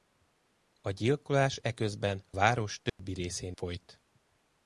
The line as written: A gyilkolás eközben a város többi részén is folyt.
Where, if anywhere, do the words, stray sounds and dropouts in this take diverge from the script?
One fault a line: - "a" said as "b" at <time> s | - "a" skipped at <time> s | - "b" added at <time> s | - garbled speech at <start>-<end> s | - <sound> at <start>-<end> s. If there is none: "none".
- "a" skipped at 2.2 s
- dropout at 2.9-3.0 s
- "is" skipped at 3.5 s